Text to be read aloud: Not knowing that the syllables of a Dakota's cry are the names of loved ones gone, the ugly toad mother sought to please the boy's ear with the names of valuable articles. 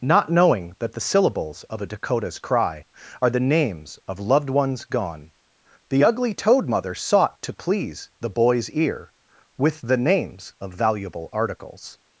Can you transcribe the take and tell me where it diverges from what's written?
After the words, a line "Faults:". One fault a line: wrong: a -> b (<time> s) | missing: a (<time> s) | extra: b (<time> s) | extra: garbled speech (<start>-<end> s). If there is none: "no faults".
Not knowing that the syllables of a Dakota's cry are the names of loved ones gone, the ugly toad mother sought to please the boy's ear with the names of valuable articles.
Faults:
no faults